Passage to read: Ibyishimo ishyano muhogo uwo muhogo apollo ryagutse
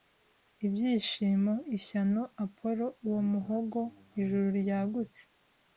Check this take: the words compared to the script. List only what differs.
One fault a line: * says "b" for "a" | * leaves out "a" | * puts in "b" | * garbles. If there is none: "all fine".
* says "apollo" for "muhogo"
* says "ijuru" for "apollo"